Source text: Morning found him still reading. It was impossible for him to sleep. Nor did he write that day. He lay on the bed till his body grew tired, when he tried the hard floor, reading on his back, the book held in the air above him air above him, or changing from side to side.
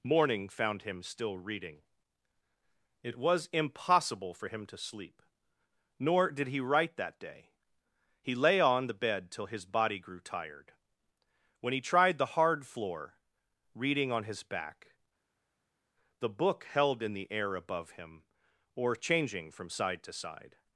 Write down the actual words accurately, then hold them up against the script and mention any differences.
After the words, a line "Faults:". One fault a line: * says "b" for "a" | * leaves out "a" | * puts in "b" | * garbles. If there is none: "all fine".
Morning found him still reading. It was impossible for him to sleep. Nor did he write that day. He lay on the bed till his body grew tired, when he tried the hard floor, reading on his back, the book held in the air above him, or changing from side to side.
Faults:
* leaves out "air above him"